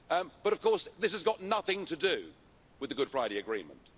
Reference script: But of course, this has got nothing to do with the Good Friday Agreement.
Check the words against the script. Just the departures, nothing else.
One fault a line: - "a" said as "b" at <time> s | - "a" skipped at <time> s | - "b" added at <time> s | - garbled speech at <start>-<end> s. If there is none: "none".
none